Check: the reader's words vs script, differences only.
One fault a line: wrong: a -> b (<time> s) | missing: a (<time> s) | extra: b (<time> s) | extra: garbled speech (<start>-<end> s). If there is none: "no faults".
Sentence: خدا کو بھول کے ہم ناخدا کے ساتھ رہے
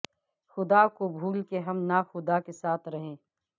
no faults